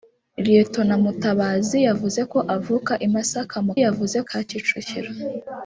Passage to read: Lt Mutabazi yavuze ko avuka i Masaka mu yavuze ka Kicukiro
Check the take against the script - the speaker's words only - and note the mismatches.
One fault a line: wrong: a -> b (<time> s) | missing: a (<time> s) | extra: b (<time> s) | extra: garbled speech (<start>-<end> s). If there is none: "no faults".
no faults